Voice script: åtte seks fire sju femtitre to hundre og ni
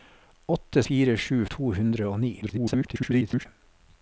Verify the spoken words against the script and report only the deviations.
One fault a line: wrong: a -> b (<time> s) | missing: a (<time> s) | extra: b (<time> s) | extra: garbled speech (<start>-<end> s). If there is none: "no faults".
missing: seks (0.8 s)
missing: femtitre (1.4 s)
extra: garbled speech (2.4-3.5 s)